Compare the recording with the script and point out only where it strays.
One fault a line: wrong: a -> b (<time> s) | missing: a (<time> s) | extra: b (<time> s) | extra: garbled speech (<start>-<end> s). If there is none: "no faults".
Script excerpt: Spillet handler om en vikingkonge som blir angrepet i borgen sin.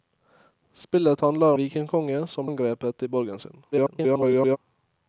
missing: om en (1.5 s)
missing: blir (2.5 s)
extra: garbled speech (3.7-4.6 s)